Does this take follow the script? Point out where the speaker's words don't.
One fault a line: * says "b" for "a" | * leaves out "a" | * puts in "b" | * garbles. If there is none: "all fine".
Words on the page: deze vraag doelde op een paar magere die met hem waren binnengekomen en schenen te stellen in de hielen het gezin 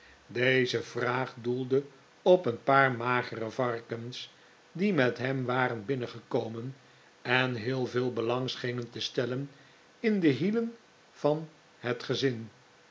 * puts in "varkens"
* puts in "heel veel belang"
* puts in "van"